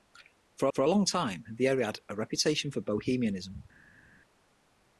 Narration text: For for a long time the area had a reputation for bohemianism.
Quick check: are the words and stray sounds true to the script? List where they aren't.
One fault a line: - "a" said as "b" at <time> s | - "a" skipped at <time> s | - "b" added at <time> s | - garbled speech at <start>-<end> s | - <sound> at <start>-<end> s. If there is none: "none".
none